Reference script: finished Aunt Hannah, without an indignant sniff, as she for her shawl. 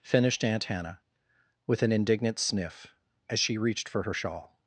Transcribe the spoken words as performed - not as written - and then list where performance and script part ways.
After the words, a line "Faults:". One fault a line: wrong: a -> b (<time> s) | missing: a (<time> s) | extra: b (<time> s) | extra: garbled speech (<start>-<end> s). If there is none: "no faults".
finished Aunt Hannah, with an indignant sniff, as she reached for her shawl.
Faults:
wrong: without -> with (1.7 s)
extra: reached (3.6 s)